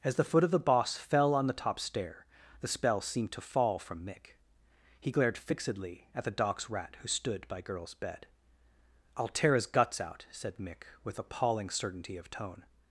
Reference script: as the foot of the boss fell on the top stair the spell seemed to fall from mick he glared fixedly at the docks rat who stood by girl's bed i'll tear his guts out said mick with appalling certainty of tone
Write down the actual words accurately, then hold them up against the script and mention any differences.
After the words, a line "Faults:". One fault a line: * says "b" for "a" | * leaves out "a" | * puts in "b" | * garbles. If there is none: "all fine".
as the foot of the boss fell on the top stair the spell seemed to fall from mick he glared fixedly at the docks rat who stood by girl's bed i'll tear his guts out said mick with appalling certainty of tone
Faults:
all fine